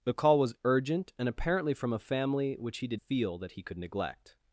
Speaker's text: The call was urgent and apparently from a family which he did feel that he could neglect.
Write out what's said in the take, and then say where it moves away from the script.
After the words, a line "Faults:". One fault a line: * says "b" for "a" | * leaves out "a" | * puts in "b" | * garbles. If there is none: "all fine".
The call was urgent and apparently from a family which he did feel that he could neglect.
Faults:
all fine